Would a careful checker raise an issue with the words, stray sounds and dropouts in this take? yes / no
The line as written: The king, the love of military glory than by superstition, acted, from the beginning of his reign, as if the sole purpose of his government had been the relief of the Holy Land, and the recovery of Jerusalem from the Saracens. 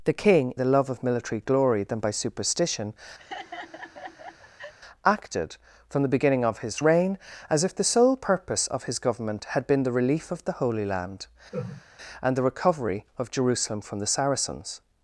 yes